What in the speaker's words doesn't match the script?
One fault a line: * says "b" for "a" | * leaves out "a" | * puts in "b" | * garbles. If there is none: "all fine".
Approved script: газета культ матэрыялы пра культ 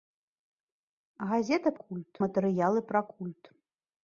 all fine